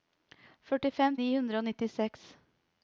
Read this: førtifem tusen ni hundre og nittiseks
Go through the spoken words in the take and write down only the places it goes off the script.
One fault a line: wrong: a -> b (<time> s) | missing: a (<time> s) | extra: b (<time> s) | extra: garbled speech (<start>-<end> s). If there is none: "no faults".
missing: tusen (1.2 s)